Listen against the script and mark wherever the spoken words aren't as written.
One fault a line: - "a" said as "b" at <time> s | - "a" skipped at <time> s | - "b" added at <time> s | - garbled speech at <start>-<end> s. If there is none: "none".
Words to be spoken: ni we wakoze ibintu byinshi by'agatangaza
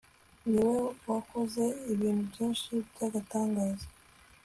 none